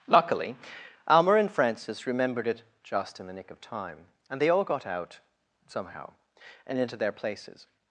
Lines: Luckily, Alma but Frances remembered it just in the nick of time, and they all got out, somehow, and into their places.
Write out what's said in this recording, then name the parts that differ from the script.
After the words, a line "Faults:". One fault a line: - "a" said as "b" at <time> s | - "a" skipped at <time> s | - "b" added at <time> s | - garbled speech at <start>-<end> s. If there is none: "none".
Luckily, Alma and Frances remembered it just in the nick of time, and they all got out, somehow, and into their places.
Faults:
- "but" said as "and" at 1.3 s